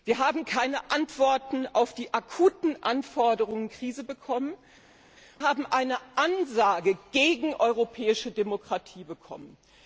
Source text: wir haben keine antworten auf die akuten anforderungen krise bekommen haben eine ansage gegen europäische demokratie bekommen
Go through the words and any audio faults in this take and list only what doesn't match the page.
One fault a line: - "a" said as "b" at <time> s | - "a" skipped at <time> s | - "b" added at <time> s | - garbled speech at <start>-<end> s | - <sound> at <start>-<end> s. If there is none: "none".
none